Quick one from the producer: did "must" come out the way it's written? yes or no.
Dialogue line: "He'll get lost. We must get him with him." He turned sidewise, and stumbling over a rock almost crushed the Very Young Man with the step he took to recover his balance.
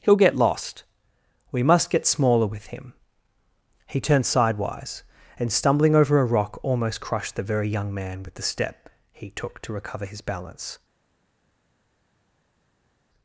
yes